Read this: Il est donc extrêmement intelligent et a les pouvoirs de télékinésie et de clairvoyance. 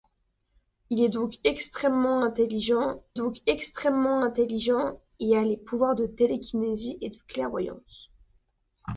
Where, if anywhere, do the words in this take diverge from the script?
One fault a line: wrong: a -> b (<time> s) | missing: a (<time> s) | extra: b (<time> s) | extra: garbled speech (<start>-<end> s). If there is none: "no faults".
extra: donc extrêmement intelligent (3.1 s)